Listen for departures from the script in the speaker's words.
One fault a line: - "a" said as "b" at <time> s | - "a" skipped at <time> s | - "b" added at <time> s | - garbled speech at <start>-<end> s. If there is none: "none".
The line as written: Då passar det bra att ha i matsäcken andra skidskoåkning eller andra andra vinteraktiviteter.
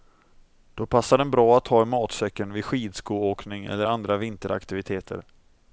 - "det" said as "den" at 1.2 s
- "andra" said as "vid" at 2.5 s
- "andra" skipped at 4.2 s